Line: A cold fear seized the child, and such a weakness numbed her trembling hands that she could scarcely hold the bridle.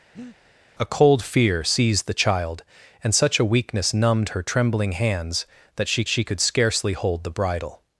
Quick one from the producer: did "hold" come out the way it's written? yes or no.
yes